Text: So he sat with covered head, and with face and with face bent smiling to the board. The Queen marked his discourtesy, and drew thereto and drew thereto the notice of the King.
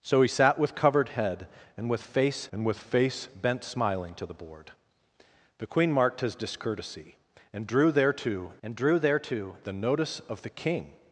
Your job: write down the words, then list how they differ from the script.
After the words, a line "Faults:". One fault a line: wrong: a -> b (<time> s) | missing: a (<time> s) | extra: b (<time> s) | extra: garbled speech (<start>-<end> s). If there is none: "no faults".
So he sat with covered head, and with face and with face bent smiling to the board. The Queen marked his discourtesy, and drew thereto and drew thereto the notice of the King.
Faults:
no faults